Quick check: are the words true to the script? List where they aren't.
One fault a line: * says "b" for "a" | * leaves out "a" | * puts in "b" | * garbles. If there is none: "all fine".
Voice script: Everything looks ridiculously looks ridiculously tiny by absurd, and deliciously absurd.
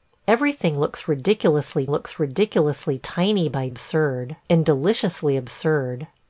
all fine